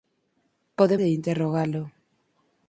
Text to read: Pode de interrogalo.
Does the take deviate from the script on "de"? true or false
false